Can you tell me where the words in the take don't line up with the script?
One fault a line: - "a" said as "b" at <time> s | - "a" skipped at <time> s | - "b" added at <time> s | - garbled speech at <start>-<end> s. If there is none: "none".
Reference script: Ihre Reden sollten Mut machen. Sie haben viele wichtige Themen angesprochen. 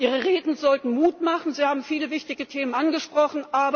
none